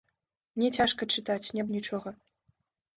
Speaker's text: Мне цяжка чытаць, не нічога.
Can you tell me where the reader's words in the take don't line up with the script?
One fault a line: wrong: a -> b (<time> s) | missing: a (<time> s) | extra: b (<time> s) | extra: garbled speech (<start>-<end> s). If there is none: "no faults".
no faults